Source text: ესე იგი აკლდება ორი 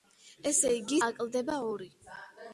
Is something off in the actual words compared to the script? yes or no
no